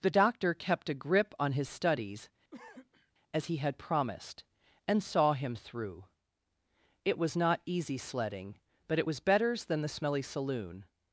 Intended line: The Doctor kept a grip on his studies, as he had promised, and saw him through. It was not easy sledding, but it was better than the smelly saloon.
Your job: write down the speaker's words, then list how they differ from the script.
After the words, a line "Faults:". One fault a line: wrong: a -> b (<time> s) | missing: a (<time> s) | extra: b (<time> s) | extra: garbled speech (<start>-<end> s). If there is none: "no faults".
The Doctor kept a grip on his studies, as he had promised, and saw him through. It was not easy sledding, but it was betters than the smelly saloon.
Faults:
wrong: better -> betters (9.2 s)